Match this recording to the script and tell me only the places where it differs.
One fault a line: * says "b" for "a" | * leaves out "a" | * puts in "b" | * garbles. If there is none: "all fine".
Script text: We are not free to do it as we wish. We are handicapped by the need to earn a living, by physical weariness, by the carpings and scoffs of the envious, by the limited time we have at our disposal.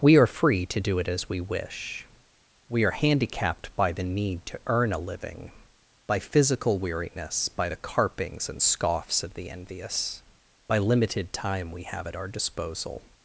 * leaves out "not"
* leaves out "the"